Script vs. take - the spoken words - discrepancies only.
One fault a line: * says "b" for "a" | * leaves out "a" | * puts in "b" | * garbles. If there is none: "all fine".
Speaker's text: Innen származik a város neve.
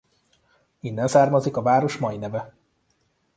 * puts in "mai"